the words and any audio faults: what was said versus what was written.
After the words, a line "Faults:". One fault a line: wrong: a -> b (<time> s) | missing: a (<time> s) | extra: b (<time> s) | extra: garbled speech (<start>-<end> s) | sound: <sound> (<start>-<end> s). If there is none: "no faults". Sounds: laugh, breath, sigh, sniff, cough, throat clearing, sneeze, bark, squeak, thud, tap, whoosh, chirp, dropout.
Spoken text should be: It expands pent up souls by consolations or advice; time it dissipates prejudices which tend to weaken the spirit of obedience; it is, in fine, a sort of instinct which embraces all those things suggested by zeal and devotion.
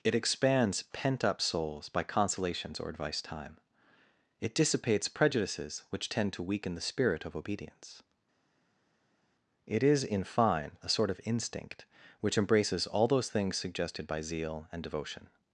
It expands pent up souls by consolations or advice; time it dissipates prejudices which tend to weaken the spirit of obedience; it is, in fine, a sort of instinct which embraces all those things suggested by zeal and devotion.
Faults:
no faults